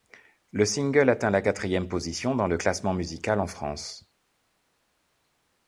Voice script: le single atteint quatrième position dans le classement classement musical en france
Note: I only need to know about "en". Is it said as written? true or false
true